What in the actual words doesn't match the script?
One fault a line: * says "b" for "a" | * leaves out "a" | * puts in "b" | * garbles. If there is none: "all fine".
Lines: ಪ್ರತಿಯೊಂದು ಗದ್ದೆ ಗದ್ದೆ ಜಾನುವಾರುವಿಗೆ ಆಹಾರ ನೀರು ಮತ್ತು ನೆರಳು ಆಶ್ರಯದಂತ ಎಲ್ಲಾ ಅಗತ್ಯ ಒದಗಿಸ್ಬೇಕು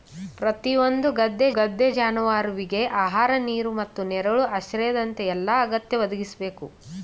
all fine